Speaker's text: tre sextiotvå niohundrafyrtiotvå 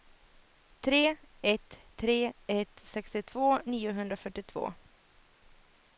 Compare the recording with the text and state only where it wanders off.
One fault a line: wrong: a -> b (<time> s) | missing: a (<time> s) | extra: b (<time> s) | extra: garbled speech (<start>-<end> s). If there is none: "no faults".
extra: ett tre ett (1.4 s)